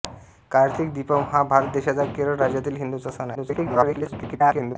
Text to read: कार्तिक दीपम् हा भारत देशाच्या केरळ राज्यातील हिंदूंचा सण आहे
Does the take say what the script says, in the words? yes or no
no